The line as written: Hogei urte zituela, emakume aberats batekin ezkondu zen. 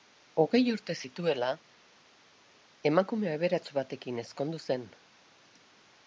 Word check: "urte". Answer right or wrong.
right